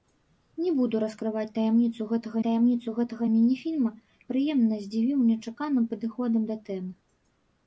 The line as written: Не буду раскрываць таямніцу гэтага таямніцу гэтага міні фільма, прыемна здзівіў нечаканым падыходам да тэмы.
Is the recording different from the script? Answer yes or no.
no